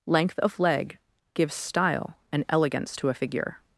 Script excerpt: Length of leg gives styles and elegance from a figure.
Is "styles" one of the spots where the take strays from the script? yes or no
yes